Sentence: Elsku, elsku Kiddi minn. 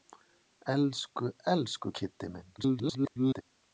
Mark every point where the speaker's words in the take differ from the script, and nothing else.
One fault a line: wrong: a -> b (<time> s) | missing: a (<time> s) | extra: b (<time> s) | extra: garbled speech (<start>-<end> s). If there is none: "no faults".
extra: garbled speech (2.6-3.4 s)